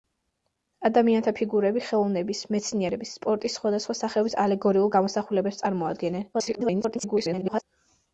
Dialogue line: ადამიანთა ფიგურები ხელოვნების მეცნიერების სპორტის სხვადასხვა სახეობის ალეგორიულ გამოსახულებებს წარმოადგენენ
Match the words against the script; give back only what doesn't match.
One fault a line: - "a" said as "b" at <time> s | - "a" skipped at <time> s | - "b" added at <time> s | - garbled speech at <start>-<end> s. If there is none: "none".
- garbled speech at 6.3-7.6 s